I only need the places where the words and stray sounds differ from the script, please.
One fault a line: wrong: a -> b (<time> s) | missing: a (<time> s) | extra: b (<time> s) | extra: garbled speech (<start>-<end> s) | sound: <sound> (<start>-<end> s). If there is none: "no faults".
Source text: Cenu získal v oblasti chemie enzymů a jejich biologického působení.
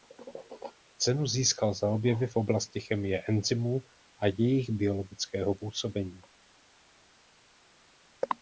extra: za objevy (1.7 s)